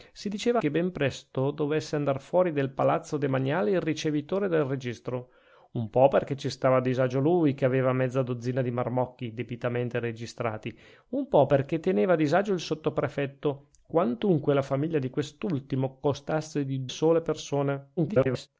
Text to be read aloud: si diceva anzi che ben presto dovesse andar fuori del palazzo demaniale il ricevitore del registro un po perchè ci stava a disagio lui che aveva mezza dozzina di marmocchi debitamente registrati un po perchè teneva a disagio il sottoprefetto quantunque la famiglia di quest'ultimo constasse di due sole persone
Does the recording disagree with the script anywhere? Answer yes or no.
yes